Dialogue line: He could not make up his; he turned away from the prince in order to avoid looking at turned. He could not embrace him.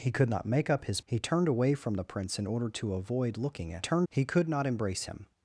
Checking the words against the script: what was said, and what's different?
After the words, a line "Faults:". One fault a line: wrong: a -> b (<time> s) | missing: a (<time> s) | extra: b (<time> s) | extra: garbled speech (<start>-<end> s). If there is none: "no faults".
He could not make up his; he turned away from the prince in order to avoid looking at turned. He could not embrace him.
Faults:
no faults